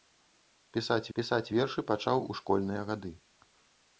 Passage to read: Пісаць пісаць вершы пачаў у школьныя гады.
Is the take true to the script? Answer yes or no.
yes